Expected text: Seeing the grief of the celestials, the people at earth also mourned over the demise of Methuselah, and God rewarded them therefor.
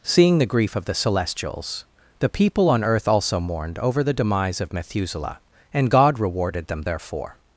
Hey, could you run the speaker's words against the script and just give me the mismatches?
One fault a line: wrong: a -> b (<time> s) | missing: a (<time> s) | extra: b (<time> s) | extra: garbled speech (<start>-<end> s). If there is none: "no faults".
wrong: at -> on (2.7 s)